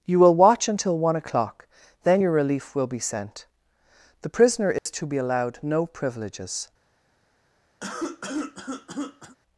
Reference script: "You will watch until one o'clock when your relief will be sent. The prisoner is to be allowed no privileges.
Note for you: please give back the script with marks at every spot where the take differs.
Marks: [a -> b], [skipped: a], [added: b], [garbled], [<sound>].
"You will watch until one o'clock [when -> then] your relief will be sent. The prisoner is [dropout] to be allowed no privileges. [cough]